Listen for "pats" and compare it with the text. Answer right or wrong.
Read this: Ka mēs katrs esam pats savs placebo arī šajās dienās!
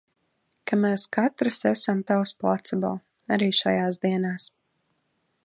wrong